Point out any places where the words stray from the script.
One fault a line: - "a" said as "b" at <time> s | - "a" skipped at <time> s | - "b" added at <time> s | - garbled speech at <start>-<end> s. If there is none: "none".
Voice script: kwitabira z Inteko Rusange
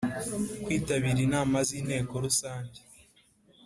- "inama" added at 1.3 s